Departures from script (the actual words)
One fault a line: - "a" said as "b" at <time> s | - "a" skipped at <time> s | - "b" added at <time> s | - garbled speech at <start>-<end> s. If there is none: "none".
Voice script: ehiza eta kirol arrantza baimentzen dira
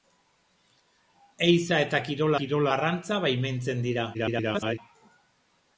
- "kirol" added at 2.4 s
- garbled speech at 4.1-4.8 s